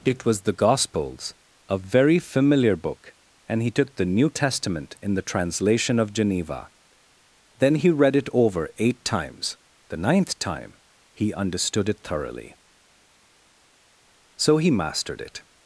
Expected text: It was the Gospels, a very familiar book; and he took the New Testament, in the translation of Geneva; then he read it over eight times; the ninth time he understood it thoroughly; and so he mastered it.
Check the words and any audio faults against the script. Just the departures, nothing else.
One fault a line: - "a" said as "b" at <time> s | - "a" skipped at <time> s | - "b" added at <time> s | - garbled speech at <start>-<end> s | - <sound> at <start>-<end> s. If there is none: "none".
- "and" skipped at 12.6 s